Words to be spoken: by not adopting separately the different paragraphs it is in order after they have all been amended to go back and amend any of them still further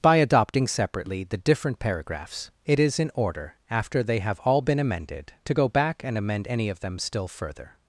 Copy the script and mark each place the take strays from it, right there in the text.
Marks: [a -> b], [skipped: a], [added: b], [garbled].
by [skipped: not] adopting separately the different paragraphs it is in order after they have all been amended to go back and amend any of them still further